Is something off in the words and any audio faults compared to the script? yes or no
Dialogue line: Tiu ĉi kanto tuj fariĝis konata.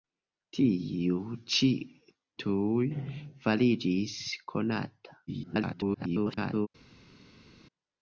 yes